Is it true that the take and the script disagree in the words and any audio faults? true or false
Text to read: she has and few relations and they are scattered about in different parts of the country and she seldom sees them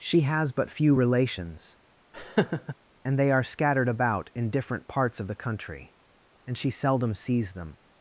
true